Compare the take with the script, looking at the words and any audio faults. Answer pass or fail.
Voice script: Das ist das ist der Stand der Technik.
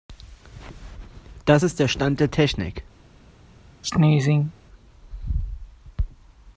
fail